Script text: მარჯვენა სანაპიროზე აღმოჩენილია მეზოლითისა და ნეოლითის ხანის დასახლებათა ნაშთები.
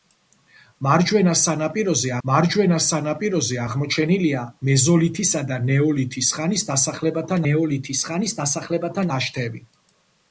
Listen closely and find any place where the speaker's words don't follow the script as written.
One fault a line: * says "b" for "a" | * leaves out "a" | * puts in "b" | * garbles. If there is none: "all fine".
* puts in "მარჯვენა სანაპიროზე"
* puts in "ნეოლითის ხანის დასახლებათა"